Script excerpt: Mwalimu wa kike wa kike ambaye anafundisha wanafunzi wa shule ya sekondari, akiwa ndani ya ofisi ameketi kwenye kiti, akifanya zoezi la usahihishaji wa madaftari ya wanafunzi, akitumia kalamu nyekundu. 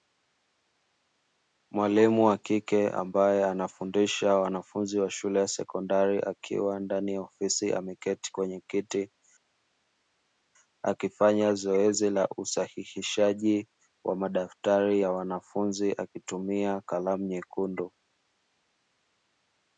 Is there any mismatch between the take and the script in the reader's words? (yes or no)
yes